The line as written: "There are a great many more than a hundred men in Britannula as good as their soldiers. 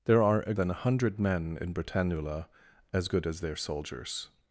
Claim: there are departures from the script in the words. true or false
true